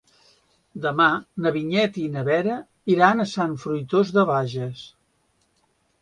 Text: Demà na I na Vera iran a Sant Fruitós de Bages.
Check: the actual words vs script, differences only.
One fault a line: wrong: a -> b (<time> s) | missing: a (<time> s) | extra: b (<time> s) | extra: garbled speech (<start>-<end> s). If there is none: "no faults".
extra: Vinyet (1.6 s)